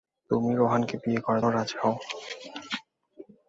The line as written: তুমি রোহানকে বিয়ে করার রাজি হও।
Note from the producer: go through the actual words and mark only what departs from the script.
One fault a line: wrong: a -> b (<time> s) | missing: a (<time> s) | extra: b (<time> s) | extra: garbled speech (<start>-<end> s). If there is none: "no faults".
no faults